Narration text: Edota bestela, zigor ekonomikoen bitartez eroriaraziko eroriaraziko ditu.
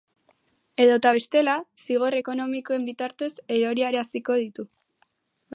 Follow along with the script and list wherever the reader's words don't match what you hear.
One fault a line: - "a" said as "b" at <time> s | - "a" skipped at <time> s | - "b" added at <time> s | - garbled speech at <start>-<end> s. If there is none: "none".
- "eroriaraziko" skipped at 4.4 s